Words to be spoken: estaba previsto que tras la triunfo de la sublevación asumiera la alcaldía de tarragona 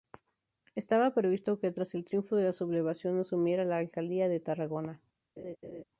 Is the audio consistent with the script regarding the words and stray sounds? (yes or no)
no